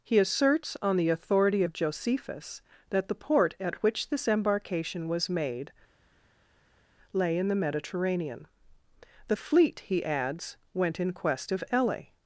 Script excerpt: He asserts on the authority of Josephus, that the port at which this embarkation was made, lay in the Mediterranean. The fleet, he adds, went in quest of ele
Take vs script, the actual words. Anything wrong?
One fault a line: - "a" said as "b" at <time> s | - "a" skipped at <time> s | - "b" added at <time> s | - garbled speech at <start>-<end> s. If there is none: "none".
none